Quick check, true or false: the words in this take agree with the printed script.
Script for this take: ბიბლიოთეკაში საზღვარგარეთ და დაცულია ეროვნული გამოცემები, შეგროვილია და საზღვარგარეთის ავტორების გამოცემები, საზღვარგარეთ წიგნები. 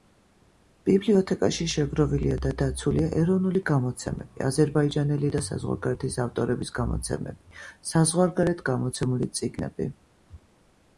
false